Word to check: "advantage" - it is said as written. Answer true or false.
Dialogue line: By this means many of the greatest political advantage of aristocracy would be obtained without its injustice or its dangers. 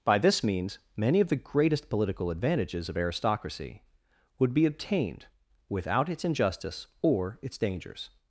false